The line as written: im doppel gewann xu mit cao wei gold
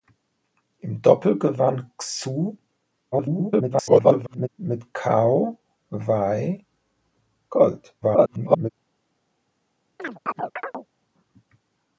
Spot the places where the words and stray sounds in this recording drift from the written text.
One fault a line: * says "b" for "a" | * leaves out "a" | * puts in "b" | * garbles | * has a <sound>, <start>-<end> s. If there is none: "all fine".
* garbles
* garbles
* has a chirp, 10.0-10.9 s